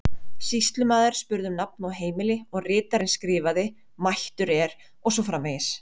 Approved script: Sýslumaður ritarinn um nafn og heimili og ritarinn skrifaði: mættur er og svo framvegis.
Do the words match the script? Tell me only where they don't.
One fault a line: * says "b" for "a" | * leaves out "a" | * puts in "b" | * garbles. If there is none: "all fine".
* says "spurði" for "ritarinn"